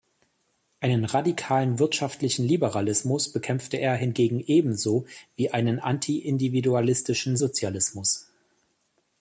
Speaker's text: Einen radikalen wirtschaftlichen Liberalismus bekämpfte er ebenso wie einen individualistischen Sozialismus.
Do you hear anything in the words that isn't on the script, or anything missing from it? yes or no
yes